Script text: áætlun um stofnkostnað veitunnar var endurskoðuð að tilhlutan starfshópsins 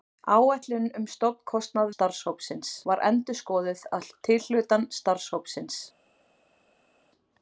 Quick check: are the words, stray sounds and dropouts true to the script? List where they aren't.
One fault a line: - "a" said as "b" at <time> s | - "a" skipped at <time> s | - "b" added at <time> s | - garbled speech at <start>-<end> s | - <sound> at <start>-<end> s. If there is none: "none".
- "veitunnar" said as "starfshópsins" at 1.9 s